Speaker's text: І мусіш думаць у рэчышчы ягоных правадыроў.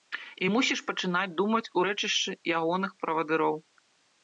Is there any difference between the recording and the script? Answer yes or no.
yes